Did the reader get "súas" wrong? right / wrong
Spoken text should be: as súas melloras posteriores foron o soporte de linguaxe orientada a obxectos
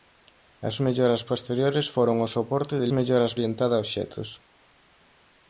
wrong